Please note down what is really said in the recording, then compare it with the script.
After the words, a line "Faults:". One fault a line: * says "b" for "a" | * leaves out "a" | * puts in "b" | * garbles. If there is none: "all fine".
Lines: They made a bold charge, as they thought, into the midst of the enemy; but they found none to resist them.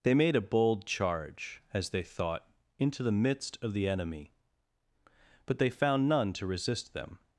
They made a bold charge, as they thought, into the midst of the enemy; but they found none to resist them.
Faults:
all fine